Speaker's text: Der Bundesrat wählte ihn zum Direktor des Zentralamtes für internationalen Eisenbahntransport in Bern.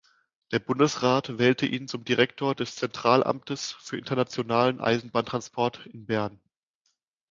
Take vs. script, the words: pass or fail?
pass